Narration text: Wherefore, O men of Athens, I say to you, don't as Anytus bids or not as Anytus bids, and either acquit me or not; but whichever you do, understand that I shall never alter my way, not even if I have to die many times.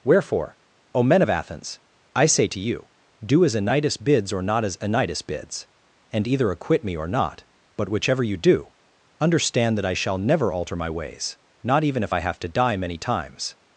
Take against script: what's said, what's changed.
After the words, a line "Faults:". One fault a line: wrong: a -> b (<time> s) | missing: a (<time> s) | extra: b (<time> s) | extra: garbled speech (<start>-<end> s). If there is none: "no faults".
Wherefore, O men of Athens, I say to you, do as Anytus bids or not as Anytus bids, and either acquit me or not; but whichever you do, understand that I shall never alter my ways, not even if I have to die many times.
Faults:
wrong: don't -> do (3.2 s)
wrong: way -> ways (10.9 s)